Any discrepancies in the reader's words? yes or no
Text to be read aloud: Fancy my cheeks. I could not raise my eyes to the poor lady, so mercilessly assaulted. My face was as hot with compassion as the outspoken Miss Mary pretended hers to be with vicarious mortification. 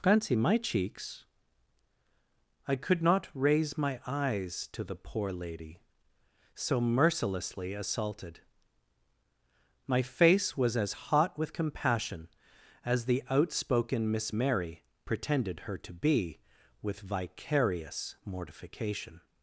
yes